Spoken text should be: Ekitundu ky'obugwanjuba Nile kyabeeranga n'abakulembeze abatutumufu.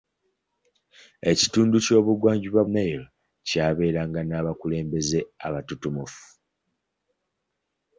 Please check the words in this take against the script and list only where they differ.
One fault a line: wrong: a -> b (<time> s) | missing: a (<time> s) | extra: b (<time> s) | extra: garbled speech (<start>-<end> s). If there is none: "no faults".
no faults